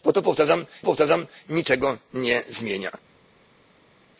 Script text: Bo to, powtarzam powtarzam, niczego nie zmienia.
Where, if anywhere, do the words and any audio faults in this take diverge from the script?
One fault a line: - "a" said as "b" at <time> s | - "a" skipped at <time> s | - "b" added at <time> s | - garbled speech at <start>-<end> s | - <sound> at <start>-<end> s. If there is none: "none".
none